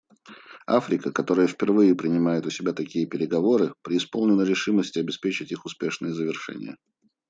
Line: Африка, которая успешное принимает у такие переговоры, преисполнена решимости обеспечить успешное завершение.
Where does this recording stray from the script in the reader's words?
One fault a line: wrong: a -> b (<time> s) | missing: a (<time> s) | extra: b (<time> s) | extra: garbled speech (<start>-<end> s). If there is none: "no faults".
wrong: успешное -> впервые (1.4 s)
extra: себя (2.5 s)
extra: их (5.5 s)